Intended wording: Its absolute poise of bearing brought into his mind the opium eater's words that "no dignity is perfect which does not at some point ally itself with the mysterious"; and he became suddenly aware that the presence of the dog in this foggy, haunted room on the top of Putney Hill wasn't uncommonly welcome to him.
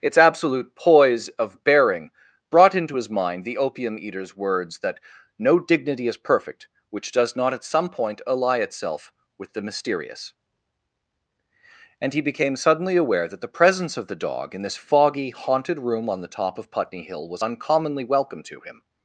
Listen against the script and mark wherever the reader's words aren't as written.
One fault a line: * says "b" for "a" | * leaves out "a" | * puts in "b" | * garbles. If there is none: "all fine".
* says "was" for "wasn't"